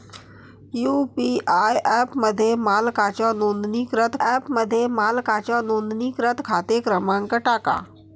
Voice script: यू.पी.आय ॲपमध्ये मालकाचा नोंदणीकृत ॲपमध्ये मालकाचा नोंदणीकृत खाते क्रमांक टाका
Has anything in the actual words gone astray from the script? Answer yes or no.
no